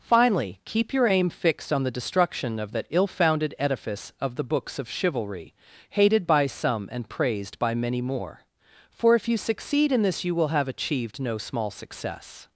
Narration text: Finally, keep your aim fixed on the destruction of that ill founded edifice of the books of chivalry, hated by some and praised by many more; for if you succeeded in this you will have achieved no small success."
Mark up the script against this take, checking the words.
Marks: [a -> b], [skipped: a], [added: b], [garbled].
Finally, keep your aim fixed on the destruction of that ill founded edifice of the books of chivalry, hated by some and praised by many more; for if you [succeeded -> succeed] in this you will have achieved no small success."